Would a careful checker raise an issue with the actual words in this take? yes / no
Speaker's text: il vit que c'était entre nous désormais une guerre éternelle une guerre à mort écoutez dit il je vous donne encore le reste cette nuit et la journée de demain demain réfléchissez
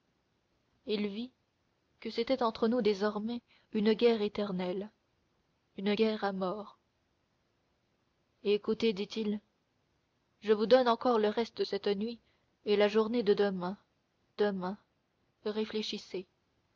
no